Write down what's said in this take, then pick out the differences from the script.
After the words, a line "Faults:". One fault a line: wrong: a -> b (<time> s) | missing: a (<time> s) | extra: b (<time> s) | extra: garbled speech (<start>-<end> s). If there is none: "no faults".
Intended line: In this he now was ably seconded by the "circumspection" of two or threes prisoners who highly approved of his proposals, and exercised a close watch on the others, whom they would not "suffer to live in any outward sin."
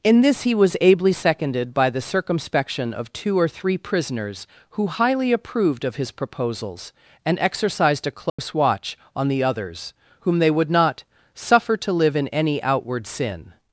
In this he was ably seconded by the "circumspection" of two or three prisoners who highly approved of his proposals, and exercised a close watch on the others, whom they would not "suffer to live in any outward sin."
Faults:
missing: now (0.6 s)
wrong: threes -> three (3.5 s)